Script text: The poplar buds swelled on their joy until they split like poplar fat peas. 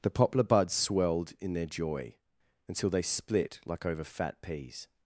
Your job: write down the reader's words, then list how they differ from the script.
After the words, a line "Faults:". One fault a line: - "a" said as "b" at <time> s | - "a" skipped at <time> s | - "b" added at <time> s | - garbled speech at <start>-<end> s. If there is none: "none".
The poplar buds swelled in their joy until they split like over fat peas.
Faults:
- "on" said as "in" at 1.4 s
- "poplar" said as "over" at 3.9 s